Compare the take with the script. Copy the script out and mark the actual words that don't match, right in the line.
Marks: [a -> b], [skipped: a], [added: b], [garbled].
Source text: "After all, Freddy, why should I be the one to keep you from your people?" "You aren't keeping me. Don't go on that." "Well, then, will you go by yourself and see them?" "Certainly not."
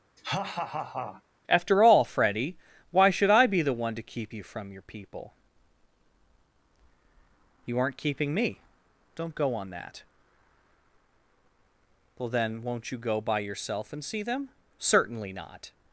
"After all, Freddy, why should I be the one to keep you from your people?" "You aren't keeping me. Don't go on that." "Well, then, [will -> won't] you go by yourself and see them?" "Certainly not."